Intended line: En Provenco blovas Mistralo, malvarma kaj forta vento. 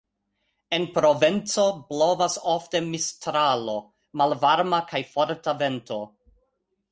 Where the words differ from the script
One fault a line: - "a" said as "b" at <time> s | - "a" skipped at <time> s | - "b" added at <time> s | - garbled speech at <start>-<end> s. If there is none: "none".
- "ofte" added at 2.5 s